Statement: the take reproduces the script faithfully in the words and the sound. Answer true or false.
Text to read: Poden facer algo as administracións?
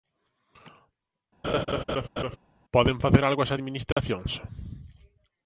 false